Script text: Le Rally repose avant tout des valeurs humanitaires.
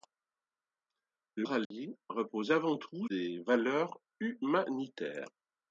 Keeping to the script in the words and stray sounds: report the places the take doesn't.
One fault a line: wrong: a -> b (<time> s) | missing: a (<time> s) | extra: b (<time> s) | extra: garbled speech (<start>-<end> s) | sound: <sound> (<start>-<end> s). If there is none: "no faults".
sound: dropout (1.6-1.7 s)